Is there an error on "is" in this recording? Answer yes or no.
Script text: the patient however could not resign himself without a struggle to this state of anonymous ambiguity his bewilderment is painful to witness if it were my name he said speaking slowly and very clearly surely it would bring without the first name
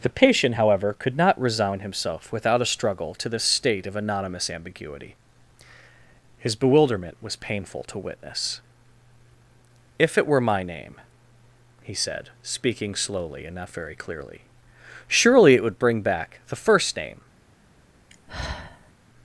yes